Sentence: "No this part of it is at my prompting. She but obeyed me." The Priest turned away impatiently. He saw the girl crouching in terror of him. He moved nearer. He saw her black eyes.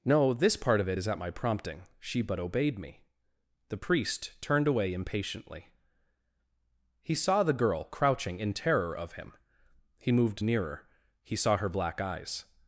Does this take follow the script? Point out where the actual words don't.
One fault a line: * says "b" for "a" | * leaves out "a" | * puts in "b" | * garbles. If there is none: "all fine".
all fine